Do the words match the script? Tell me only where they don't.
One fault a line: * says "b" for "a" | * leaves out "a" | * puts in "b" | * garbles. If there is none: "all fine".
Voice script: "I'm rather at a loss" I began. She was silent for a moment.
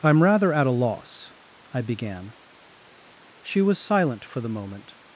* says "the" for "a"